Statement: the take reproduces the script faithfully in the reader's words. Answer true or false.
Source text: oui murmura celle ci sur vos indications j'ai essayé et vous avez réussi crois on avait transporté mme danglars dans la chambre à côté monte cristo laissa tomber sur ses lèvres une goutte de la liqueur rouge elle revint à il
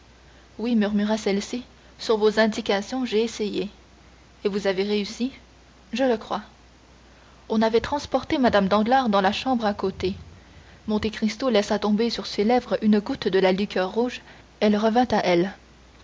false